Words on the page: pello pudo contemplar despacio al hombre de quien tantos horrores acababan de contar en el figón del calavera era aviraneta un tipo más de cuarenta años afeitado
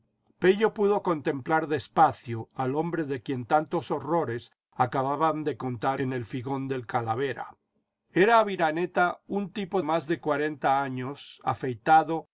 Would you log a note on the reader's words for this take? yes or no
no